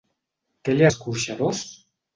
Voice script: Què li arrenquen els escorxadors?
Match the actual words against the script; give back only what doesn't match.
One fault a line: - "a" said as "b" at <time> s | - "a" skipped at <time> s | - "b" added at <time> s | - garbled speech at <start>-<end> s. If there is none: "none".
- "arrenquen els" skipped at 0.9 s